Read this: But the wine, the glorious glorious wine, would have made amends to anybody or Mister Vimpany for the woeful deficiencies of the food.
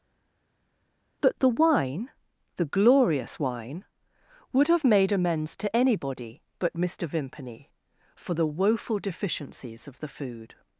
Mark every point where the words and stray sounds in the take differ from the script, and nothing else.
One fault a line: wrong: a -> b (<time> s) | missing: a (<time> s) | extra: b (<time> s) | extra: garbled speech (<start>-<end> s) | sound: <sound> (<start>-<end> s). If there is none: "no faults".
missing: glorious (3.4 s)
wrong: or -> but (6.6 s)